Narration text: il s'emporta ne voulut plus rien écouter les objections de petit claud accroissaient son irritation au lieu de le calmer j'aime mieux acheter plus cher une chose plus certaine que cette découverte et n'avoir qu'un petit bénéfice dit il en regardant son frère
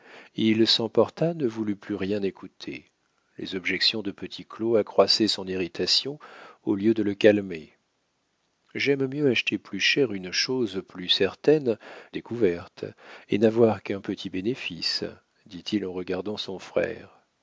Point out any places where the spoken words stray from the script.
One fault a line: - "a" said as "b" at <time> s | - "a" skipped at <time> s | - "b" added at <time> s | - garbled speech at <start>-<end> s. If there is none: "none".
- "que cette" skipped at 11.8 s